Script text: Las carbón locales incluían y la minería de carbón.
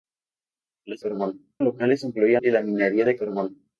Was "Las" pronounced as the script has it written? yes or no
yes